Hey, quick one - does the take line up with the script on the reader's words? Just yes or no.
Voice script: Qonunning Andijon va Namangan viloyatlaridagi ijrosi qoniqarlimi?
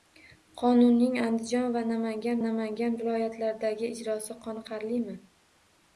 no